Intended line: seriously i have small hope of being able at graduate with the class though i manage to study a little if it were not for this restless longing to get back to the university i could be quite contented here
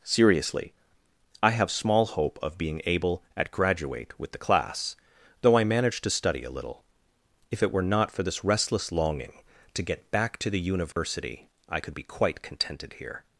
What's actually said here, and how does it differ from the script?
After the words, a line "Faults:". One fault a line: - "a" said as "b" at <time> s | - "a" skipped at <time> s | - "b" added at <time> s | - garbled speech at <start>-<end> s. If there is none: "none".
seriously i have small hope of being able at graduate with the class though i manage to study a little if it were not for this restless longing to get back to the university i could be quite contented here
Faults:
none